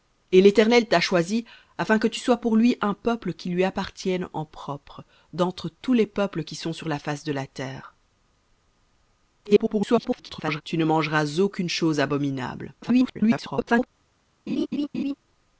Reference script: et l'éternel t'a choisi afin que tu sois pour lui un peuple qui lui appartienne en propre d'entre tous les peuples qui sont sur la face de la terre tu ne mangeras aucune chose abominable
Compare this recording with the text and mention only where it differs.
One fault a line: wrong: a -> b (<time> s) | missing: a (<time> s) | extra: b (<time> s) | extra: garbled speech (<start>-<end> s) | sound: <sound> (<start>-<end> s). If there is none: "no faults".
extra: garbled speech (9.4-10.6 s)
extra: garbled speech (12.8-13.9 s)
sound: laugh (14.5-15.1 s)